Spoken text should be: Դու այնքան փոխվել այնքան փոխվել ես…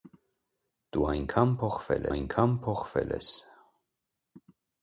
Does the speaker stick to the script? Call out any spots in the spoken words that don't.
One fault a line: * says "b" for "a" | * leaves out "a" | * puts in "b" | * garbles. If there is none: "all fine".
all fine